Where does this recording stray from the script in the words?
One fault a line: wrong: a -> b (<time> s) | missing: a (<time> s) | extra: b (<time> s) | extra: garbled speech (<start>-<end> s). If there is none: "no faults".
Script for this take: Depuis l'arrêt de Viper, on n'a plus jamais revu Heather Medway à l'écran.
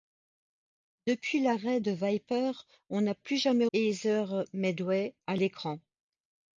missing: revu (3.7 s)